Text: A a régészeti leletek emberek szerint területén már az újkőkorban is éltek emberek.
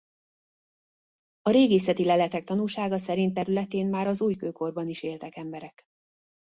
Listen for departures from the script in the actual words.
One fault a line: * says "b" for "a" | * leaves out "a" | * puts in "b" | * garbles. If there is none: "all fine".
* leaves out "a"
* says "tanúsága" for "emberek"